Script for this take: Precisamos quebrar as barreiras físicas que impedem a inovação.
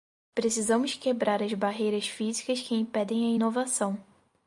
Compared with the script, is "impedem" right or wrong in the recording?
right